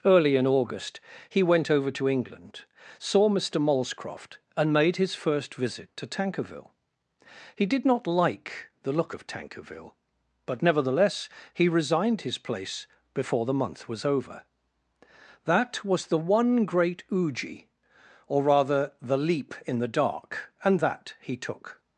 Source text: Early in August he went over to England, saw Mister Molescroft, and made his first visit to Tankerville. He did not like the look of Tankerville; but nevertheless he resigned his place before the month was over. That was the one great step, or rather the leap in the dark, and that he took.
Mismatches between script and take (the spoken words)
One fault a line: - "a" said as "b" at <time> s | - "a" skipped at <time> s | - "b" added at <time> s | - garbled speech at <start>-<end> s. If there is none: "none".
- "step" said as "uji" at 17.1 s